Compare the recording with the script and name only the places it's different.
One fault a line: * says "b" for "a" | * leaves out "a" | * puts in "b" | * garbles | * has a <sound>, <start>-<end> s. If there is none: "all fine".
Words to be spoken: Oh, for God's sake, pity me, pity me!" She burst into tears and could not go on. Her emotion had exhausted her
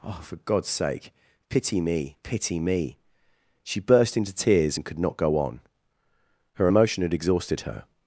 all fine